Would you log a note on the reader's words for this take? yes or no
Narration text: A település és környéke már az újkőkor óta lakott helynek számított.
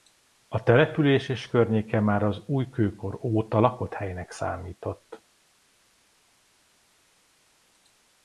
no